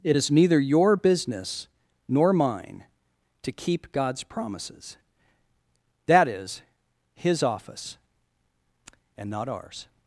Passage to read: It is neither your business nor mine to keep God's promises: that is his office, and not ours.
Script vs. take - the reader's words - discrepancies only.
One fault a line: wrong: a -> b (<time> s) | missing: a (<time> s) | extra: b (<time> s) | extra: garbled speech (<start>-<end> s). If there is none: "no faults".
no faults